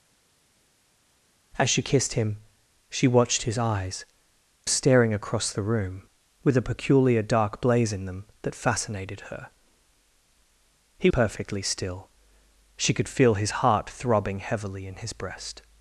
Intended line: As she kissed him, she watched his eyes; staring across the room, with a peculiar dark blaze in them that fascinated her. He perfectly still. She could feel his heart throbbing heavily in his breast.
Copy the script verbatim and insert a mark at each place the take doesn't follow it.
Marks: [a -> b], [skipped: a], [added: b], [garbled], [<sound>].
As she kissed him, she watched his eyes; staring across the room, with a peculiar dark blaze in them that fascinated her. He perfectly still. She could feel his heart throbbing heavily in his breast.